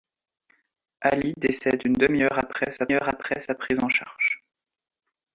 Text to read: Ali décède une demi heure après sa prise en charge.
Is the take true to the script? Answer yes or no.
no